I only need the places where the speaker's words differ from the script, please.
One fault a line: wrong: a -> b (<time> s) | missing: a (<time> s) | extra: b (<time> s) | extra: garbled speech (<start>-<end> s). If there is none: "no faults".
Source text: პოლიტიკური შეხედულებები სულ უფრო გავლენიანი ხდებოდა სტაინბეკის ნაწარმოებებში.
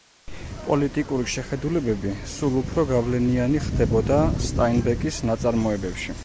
no faults